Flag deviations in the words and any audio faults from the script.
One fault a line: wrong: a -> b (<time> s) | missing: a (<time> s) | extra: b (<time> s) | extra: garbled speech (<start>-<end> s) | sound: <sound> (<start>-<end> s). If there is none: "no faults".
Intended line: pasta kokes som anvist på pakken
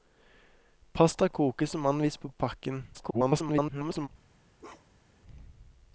extra: garbled speech (2.9-4.1 s)
sound: bark (4.6-5.2 s)